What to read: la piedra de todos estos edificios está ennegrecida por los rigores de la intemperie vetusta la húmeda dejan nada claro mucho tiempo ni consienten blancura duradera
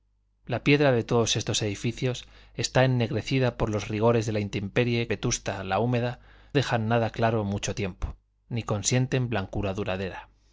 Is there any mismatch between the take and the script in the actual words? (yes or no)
no